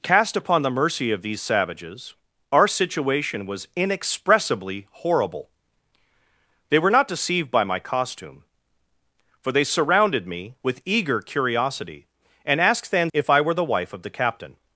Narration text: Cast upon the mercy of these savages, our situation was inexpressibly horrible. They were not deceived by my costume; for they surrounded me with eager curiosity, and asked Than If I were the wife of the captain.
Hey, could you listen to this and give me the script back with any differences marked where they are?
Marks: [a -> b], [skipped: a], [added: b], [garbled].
Cast upon the mercy of these savages, our situation was inexpressibly horrible. They were not deceived by my costume; for they surrounded me with eager curiosity, and asked Than If I were the wife of the captain.